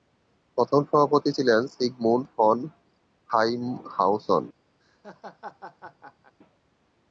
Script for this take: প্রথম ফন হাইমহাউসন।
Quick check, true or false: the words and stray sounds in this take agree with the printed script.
false